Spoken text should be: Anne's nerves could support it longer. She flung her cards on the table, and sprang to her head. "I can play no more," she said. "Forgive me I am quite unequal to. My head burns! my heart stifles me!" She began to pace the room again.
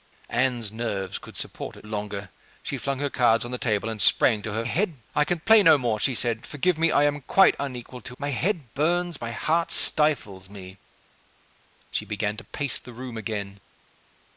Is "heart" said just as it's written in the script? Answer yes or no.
yes